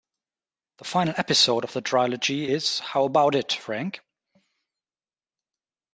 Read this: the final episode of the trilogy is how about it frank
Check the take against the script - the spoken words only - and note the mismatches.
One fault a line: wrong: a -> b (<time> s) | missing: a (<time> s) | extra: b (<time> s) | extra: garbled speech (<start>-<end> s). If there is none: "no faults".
no faults